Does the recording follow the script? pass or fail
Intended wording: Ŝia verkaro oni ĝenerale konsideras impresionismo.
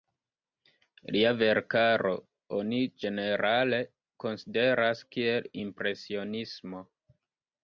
fail